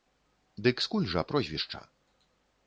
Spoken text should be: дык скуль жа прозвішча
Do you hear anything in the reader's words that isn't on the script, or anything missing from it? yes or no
no